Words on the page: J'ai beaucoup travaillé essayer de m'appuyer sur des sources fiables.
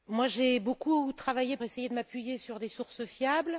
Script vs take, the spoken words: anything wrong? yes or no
no